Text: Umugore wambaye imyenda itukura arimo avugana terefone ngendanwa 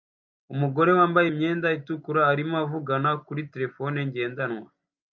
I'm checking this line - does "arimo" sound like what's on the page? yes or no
yes